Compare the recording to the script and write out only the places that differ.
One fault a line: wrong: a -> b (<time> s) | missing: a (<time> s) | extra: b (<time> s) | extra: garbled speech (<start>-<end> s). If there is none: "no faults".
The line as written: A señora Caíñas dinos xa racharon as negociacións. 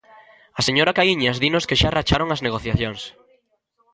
extra: que (1.7 s)